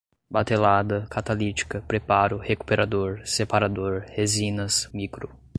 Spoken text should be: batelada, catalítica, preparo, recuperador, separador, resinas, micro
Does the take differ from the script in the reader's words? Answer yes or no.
no